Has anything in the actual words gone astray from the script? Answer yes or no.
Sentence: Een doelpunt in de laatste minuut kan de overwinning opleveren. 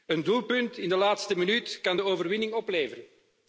no